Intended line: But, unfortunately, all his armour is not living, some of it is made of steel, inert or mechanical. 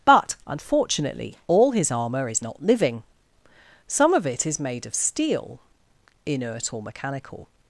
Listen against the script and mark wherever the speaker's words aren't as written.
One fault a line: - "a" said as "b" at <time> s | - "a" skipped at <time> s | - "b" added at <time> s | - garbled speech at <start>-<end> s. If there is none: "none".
none